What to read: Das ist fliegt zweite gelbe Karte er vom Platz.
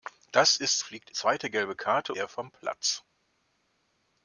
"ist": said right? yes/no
yes